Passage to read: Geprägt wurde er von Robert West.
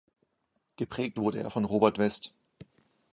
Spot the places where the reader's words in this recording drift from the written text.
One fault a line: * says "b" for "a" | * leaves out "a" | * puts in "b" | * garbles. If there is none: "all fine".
all fine